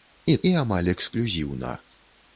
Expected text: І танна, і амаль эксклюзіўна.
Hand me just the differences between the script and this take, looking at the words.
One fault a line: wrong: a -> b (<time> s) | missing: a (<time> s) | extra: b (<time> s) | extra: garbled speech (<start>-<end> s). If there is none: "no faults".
missing: танна (0.4 s)